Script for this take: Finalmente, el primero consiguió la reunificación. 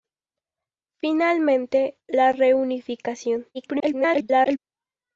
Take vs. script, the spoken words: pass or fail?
fail